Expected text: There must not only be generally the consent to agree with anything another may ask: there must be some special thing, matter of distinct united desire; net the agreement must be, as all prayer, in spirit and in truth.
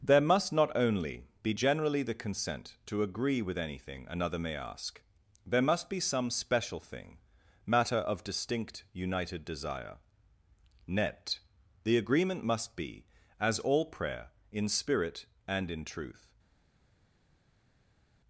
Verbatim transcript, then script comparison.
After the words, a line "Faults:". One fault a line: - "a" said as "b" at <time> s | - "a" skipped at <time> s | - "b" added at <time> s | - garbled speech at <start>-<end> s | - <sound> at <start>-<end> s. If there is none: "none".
There must not only be generally the consent to agree with anything another may ask: there must be some special thing, matter of distinct united desire; net the agreement must be, as all prayer, in spirit and in truth.
Faults:
none